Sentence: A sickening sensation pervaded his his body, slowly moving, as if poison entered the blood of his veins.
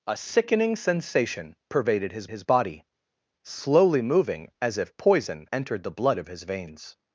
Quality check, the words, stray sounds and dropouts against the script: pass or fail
pass